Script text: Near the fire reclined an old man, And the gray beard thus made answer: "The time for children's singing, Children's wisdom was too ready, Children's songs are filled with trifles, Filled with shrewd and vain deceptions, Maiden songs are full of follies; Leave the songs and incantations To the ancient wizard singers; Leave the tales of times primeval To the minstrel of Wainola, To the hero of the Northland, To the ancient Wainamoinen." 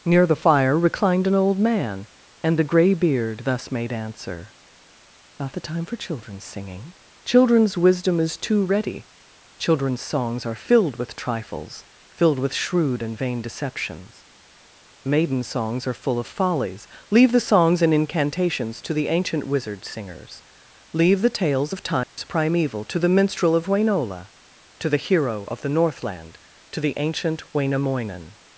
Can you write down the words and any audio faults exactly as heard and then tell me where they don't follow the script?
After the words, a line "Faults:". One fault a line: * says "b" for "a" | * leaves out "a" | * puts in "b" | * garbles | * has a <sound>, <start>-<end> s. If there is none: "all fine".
Near the fire reclined an old man, And the gray beard thus made answer: "Not the time for children's singing, Children's wisdom is too ready, Children's songs are filled with trifles, Filled with shrewd and vain deceptions, Maiden songs are full of follies; Leave the songs and incantations To the ancient wizard singers; Leave the tales of times primeval To the minstrel of Wainola, To the hero of the Northland, To the ancient Wainamoinen."
Faults:
* puts in "Not"
* says "is" for "was"
* has a dropout, 22.0-22.2 s